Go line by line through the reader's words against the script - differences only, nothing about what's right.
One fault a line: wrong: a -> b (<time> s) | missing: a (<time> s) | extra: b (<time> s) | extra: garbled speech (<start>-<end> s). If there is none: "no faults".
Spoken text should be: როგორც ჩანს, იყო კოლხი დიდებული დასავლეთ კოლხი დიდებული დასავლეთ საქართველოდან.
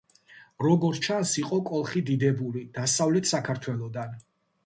missing: კოლხი დიდებული დასავლეთ (3.3 s)